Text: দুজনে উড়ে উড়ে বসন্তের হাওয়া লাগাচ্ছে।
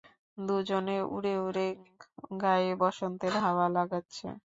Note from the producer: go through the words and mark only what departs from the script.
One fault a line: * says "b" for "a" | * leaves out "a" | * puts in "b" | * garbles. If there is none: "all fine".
* puts in "গায়ে"